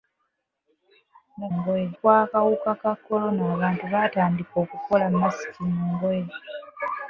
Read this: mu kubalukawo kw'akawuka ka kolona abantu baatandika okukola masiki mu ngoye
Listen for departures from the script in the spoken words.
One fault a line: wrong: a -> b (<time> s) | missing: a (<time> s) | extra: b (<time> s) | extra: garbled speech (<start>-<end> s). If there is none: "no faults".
wrong: kubalukawo -> ngoye (1.6 s)